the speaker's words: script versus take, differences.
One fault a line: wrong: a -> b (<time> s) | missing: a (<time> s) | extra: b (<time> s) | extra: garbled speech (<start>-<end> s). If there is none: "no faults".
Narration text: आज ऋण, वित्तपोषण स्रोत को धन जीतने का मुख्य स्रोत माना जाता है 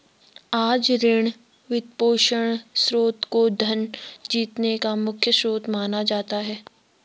no faults